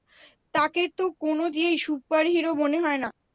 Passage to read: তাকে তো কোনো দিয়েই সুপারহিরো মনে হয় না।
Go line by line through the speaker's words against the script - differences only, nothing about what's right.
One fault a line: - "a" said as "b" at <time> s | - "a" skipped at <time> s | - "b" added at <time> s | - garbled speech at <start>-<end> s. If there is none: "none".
none